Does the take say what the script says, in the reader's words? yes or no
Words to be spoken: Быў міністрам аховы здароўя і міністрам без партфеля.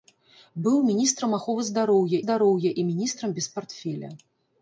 no